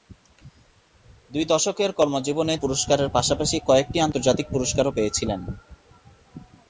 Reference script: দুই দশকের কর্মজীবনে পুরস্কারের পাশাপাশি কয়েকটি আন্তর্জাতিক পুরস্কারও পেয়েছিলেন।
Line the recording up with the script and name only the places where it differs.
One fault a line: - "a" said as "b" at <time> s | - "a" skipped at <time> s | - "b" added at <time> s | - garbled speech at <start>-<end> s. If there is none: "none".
none